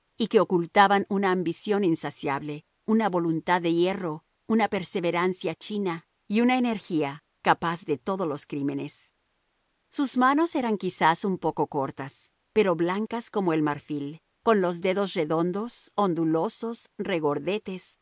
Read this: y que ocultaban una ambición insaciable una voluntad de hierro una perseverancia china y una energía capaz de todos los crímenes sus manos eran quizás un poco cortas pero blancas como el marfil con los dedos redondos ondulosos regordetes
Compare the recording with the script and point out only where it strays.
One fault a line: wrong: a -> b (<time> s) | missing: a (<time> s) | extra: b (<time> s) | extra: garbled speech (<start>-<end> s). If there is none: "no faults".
no faults